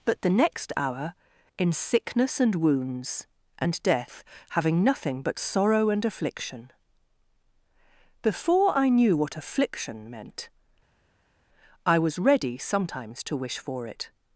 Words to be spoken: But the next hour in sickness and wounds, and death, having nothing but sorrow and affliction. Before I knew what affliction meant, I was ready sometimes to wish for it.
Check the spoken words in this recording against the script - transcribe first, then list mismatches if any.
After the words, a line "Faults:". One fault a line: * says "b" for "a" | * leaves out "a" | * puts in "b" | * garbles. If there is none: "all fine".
But the next hour in sickness and wounds, and death, having nothing but sorrow and affliction. Before I knew what affliction meant, I was ready sometimes to wish for it.
Faults:
all fine